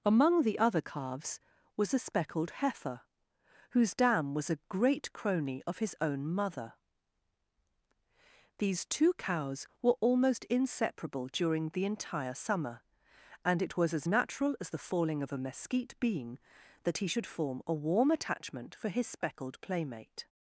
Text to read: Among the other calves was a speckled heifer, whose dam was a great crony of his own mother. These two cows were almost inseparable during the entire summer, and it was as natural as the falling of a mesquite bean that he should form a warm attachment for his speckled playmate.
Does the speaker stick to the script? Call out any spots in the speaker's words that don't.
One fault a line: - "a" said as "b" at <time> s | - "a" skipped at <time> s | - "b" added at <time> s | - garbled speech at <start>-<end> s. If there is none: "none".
none